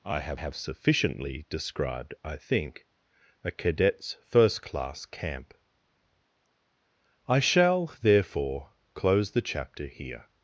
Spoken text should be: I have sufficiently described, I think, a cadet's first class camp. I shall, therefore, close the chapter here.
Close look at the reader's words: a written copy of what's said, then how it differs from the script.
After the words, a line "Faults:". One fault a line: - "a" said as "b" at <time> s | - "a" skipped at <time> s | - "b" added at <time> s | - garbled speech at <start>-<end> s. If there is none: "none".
I have have sufficiently described, I think, a cadet's first class camp. I shall, therefore, close the chapter here.
Faults:
- "have" added at 0.3 s